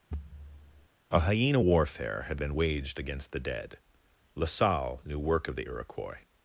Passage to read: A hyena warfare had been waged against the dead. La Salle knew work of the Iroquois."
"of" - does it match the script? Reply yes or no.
yes